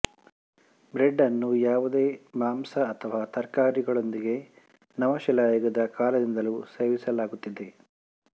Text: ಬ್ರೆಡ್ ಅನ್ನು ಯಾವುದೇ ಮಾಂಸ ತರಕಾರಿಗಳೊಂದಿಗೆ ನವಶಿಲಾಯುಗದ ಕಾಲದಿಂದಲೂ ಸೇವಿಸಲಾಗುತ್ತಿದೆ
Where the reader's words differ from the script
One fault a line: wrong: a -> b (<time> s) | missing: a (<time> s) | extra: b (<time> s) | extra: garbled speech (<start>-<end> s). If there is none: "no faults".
extra: ಅಥವಾ (2.9 s)